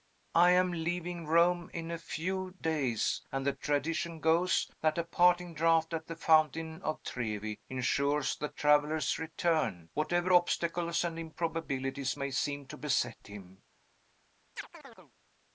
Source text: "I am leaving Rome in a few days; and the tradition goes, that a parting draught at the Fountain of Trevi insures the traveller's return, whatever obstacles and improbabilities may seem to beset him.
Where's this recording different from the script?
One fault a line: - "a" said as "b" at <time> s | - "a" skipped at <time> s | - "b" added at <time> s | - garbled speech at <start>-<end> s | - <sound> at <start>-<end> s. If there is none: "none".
- chirp at 14.6-15.1 s